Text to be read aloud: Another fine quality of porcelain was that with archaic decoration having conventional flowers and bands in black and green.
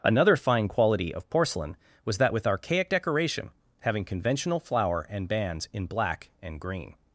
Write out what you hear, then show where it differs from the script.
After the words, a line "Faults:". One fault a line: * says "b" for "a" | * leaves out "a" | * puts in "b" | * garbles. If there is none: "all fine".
Another fine quality of porcelain was that with archaic decoration having conventional flower and bands in black and green.
Faults:
* says "flower" for "flowers"